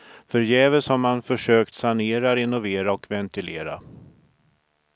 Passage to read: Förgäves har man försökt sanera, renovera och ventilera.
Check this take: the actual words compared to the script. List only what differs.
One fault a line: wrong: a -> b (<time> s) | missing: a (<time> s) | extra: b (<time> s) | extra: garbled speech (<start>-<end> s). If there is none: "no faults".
no faults